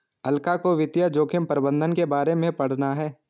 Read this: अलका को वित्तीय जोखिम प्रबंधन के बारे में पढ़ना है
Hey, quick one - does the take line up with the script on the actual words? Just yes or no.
yes